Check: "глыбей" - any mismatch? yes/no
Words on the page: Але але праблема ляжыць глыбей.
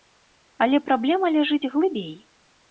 no